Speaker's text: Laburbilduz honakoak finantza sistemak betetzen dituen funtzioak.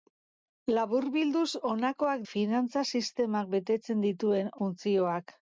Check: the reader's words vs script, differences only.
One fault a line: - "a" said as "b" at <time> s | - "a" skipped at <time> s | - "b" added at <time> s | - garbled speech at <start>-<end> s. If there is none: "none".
none